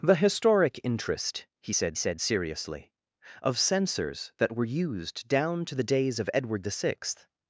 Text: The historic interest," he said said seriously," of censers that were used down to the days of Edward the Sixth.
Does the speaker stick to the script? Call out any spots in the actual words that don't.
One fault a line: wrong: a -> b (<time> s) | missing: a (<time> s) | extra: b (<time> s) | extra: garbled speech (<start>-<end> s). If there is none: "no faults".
no faults